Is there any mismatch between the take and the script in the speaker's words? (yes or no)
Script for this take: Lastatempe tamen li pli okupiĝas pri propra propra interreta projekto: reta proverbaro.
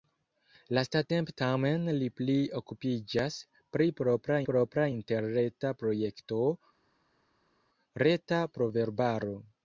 no